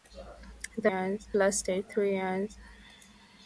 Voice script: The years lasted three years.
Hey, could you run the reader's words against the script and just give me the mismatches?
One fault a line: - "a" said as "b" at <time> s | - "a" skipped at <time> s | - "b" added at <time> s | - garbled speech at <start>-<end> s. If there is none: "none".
none